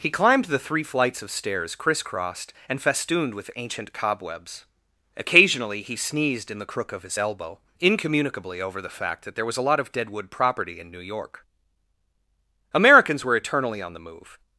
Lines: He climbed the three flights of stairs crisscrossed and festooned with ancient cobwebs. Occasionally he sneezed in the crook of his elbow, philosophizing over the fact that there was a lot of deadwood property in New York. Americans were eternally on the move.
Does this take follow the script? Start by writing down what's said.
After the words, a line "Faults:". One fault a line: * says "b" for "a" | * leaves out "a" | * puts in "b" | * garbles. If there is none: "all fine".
He climbed the three flights of stairs crisscrossed and festooned with ancient cobwebs. Occasionally he sneezed in the crook of his elbow, incommunicably over the fact that there was a lot of deadwood property in New York. Americans were eternally on the move.
Faults:
* says "incommunicably" for "philosophizing"